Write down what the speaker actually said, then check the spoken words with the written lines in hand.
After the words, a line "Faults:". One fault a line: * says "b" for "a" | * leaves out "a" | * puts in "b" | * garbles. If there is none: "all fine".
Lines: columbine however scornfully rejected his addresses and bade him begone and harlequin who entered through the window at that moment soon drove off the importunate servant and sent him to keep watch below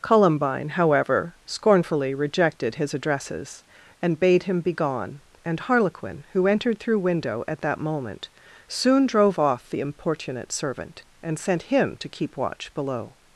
columbine however scornfully rejected his addresses and bade him begone and harlequin who entered through window at that moment soon drove off the importunate servant and sent him to keep watch below
Faults:
* leaves out "the"